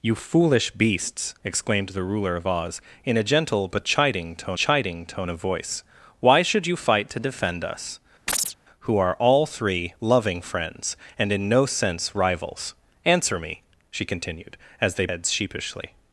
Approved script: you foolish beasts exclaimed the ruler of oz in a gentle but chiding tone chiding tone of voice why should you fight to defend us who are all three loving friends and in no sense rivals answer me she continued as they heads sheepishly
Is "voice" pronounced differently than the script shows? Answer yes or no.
no